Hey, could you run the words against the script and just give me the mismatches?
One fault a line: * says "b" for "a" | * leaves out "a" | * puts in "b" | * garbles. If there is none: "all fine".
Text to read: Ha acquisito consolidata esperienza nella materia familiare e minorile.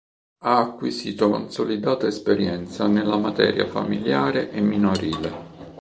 all fine